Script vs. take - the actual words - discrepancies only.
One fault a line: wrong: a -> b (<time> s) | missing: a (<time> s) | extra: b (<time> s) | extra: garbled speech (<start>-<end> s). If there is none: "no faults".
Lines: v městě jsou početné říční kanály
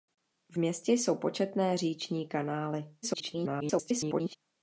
extra: garbled speech (3.0-4.4 s)